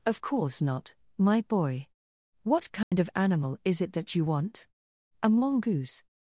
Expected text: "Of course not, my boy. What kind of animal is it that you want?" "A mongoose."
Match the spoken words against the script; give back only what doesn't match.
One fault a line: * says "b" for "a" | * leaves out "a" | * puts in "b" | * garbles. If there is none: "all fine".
all fine